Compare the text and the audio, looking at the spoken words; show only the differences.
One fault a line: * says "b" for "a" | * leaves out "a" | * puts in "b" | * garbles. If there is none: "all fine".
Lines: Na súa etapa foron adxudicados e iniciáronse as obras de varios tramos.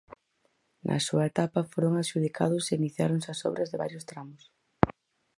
all fine